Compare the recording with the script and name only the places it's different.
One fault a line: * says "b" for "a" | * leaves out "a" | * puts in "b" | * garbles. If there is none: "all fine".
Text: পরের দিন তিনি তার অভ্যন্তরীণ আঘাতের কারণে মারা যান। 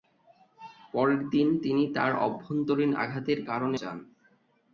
* leaves out "মারা"